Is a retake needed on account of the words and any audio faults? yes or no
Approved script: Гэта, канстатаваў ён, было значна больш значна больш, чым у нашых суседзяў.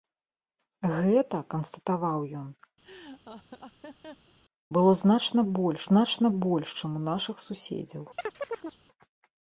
yes